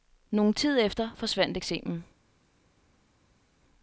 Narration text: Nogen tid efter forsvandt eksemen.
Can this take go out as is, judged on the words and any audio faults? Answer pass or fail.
pass